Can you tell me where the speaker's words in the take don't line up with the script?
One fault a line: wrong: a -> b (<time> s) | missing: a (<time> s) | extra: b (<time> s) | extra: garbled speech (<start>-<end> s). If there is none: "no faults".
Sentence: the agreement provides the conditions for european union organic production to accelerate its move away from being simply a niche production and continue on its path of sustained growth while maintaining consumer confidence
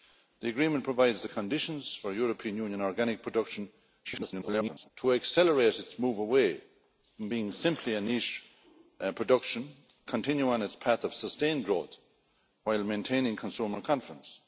extra: garbled speech (4.0-4.9 s)
missing: and (9.7 s)